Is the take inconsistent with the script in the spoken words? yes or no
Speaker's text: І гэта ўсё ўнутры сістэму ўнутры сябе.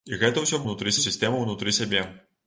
no